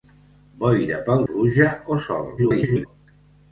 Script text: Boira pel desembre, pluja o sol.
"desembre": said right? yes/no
no